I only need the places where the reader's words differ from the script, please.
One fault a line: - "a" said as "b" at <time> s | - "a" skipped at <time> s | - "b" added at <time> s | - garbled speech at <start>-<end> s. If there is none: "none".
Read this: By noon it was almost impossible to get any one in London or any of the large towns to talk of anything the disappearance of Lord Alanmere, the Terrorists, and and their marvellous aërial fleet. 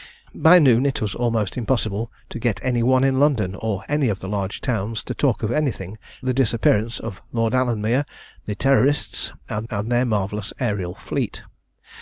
none